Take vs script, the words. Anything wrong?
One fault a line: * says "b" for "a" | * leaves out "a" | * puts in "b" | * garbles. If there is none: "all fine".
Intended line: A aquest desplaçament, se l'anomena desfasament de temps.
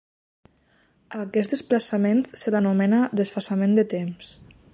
all fine